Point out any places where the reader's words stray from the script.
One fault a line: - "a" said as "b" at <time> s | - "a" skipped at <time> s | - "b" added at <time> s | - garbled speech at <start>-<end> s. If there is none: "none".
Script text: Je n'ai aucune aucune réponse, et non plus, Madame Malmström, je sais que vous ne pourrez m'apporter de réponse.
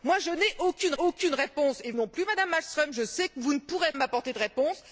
none